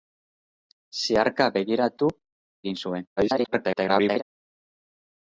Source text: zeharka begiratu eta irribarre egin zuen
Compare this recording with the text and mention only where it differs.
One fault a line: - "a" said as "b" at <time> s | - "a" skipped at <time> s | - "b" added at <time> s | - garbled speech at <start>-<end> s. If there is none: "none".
- "eta irribarre" skipped at 2.1 s
- garbled speech at 3.2-4.2 s